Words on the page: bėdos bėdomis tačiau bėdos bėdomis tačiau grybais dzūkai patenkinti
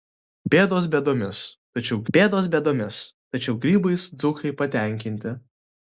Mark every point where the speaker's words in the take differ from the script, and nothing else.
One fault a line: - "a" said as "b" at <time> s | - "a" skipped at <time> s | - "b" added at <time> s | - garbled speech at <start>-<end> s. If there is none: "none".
none